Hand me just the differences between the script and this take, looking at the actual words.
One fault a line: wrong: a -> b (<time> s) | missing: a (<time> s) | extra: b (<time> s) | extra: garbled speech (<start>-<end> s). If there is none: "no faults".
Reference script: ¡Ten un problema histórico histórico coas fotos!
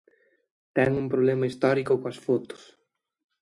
missing: histórico (1.9 s)